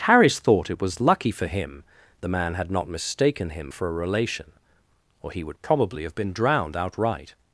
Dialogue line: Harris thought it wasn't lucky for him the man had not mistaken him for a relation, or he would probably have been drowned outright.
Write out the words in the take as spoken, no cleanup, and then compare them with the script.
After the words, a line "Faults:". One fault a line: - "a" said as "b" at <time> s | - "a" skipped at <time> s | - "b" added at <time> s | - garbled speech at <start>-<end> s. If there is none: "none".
Harris thought it was lucky for him the man had not mistaken him for a relation, or he would probably have been drowned outright.
Faults:
- "wasn't" said as "was" at 0.8 s